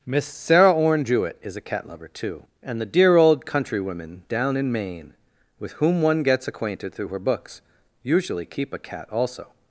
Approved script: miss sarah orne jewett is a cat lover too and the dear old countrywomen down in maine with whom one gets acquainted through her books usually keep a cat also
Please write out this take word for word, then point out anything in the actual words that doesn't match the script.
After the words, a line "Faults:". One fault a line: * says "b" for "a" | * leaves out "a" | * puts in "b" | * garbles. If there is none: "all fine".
miss sarah orne jewett is a cat lover too and the dear old countrywomen down in maine with whom one gets acquainted through her books usually keep a cat also
Faults:
all fine